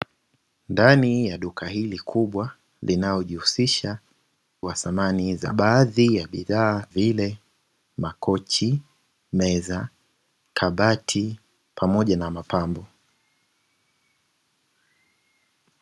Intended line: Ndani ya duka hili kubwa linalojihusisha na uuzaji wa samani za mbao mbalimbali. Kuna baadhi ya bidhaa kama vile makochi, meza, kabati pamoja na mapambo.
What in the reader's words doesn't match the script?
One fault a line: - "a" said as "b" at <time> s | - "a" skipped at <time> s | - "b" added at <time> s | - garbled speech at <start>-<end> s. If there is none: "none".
- "na uuzaji" skipped at 4.0 s
- "mbao mbalimbali Kuna" skipped at 5.5 s
- "kama" skipped at 6.9 s